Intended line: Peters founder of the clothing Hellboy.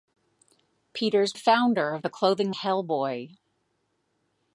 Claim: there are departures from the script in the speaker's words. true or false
false